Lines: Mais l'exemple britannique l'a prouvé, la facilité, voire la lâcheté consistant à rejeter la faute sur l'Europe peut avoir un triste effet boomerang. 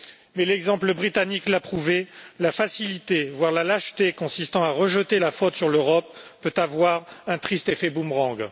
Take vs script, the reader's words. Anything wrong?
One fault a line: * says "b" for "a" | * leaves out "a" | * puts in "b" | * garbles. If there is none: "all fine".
all fine